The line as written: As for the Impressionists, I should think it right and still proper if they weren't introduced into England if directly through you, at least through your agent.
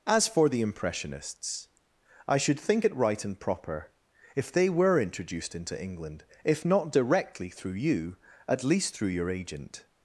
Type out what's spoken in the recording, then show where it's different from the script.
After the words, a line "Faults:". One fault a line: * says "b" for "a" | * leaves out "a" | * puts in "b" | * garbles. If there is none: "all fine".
As for the Impressionists, I should think it right and proper if they were introduced into England if not directly through you, at least through your agent.
Faults:
* leaves out "still"
* says "were" for "weren't"
* puts in "not"